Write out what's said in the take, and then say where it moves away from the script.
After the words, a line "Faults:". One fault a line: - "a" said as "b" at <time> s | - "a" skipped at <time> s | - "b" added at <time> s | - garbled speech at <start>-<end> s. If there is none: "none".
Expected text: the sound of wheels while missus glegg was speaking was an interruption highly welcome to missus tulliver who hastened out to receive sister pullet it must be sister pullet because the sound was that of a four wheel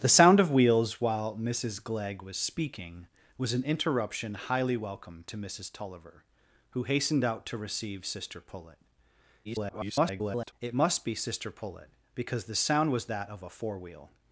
the sound of wheels while missus glegg was speaking was an interruption highly welcome to missus tulliver who hastened out to receive sister pullet [garbled] it must be sister pullet because the sound was that of a four wheel
Faults:
- garbled speech at 9.4-10.5 s